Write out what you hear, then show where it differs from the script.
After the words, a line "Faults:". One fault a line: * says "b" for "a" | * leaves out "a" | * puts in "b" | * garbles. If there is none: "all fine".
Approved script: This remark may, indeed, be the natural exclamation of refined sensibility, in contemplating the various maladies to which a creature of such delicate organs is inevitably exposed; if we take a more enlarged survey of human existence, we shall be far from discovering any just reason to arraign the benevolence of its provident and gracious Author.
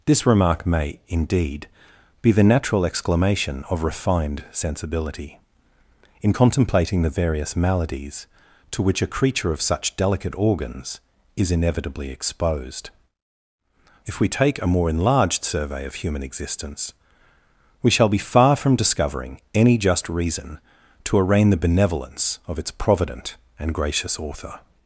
This remark may, indeed, be the natural exclamation of refined sensibility, in contemplating the various maladies to which a creature of such delicate organs is inevitably exposed; if we take a more enlarged survey of human existence, we shall be far from discovering any just reason to arraign the benevolence of its provident and gracious Author.
Faults:
all fine